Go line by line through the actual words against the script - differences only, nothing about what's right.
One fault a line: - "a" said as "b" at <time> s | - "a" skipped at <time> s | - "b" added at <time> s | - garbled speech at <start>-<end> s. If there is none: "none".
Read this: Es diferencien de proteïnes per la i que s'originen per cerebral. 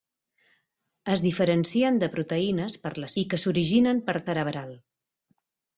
none